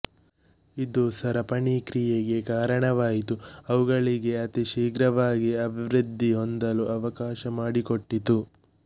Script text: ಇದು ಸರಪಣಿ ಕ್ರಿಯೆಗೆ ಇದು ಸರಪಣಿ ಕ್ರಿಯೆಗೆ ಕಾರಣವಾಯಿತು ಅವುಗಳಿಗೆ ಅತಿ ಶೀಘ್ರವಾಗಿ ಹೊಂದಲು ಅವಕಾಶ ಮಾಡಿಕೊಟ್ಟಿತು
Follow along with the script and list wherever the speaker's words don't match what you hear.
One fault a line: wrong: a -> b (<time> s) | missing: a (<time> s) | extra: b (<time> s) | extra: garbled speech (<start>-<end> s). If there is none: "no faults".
missing: ಇದು ಸರಪಣಿ ಕ್ರಿಯೆಗೆ (2.4 s)
extra: ಅಭಿವೃದ್ಧಿ (5.7 s)